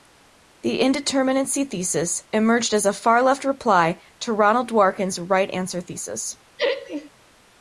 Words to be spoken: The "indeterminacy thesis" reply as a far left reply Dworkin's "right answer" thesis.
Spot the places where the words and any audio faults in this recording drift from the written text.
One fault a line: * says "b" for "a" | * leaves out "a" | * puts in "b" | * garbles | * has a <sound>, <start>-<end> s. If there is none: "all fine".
* says "emerged" for "reply"
* puts in "to Ronald"
* has a laugh, 6.6-7.1 s